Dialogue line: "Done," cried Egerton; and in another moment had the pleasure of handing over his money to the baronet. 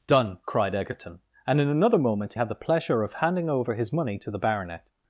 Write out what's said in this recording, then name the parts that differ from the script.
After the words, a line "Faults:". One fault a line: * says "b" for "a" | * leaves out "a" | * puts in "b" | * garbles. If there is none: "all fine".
"Done," cried Egerton; and in another moment had the pleasure of handing over his money to the baronet.
Faults:
all fine